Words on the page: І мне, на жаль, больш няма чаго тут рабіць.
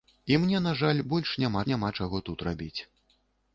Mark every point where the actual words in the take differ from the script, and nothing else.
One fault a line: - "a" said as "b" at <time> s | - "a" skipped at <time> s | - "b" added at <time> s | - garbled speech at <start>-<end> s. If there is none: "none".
- "няма" added at 1.7 s